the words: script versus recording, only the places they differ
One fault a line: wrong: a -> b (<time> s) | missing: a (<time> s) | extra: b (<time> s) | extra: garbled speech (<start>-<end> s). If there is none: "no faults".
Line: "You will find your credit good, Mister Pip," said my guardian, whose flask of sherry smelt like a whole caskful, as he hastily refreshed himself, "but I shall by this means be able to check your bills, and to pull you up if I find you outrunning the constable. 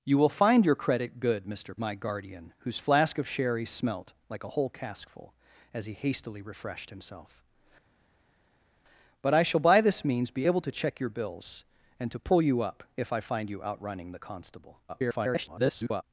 missing: Pip said (1.8 s)
extra: garbled speech (14.9-16.0 s)